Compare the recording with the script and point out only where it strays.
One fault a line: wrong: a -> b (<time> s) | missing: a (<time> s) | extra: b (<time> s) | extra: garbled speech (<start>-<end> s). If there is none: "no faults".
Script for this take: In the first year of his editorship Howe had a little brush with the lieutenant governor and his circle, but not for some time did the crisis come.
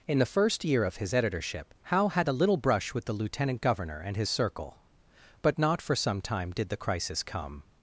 no faults